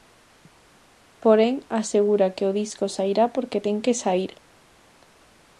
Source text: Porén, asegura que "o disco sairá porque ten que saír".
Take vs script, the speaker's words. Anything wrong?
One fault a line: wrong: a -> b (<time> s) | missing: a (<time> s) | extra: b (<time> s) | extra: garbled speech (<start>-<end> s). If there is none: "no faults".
no faults